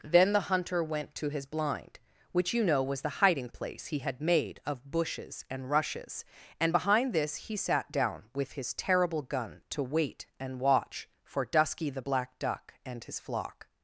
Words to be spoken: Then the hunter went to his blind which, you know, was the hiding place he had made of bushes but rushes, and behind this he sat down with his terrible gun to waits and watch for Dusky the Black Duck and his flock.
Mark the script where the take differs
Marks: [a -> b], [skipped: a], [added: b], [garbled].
Then the hunter went to his blind which, you know, was the hiding place he had made of bushes [but -> and] rushes, and behind this he sat down with his terrible gun to [waits -> wait] and watch for Dusky the Black Duck and his flock.